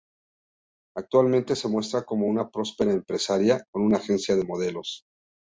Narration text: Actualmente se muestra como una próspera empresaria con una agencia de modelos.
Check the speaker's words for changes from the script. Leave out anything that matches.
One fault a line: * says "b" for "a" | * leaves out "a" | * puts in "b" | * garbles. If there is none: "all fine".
all fine